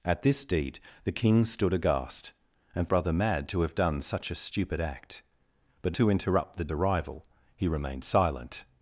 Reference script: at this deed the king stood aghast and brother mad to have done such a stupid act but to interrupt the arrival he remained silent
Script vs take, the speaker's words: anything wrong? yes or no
no